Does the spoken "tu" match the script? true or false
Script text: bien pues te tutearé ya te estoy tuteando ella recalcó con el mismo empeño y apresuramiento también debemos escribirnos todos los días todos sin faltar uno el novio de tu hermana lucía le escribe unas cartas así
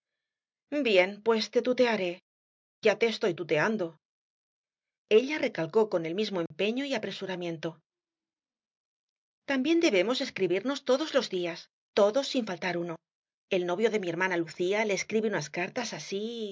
false